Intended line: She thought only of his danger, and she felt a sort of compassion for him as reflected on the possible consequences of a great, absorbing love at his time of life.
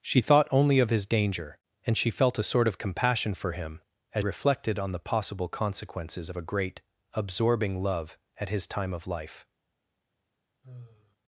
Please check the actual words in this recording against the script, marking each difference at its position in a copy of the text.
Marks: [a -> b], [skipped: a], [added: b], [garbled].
She thought only of his danger, and she felt a sort of compassion for him as reflected on the possible consequences of a great, absorbing love at his time of life.